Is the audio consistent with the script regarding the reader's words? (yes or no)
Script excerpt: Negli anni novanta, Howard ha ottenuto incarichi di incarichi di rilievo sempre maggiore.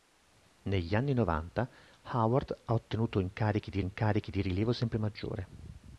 yes